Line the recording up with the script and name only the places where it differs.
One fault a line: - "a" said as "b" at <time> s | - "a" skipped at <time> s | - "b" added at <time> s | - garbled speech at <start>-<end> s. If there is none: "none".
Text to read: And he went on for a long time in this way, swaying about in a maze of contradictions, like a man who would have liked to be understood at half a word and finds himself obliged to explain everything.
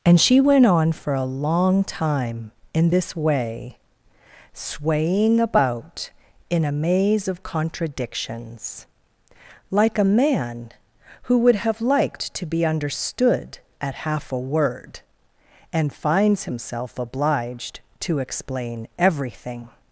- "he" said as "she" at 0.2 s